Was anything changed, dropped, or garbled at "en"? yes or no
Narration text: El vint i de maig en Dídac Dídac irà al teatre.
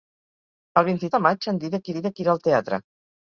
no